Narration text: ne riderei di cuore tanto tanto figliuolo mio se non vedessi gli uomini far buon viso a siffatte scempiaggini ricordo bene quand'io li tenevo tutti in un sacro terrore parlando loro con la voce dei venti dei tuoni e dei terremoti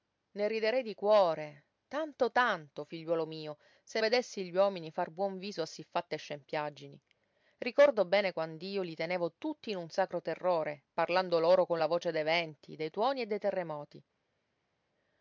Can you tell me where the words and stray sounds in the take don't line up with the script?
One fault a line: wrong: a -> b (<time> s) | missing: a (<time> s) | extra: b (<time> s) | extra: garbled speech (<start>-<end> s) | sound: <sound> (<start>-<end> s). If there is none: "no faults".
missing: non (4.0 s)